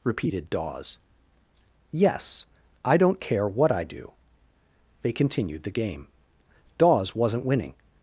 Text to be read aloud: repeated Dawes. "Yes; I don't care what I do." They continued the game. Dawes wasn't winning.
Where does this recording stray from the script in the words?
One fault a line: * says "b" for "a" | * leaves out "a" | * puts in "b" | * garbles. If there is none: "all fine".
all fine